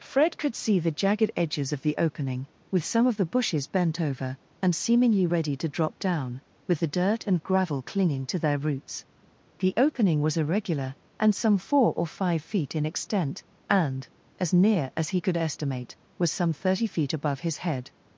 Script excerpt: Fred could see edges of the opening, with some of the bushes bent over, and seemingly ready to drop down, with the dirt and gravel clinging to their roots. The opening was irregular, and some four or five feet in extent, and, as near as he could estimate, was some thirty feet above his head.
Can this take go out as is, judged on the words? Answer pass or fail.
fail